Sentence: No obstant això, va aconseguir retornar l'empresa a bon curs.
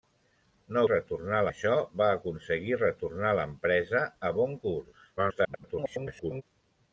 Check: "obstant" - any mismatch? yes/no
yes